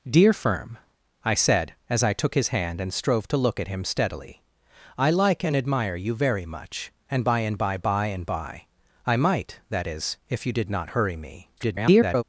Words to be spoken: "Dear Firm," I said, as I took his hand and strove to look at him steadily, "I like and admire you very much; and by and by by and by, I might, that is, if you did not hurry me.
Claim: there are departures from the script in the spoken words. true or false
true